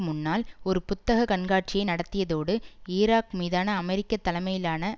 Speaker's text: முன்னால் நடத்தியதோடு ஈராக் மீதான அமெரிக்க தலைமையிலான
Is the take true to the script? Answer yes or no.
no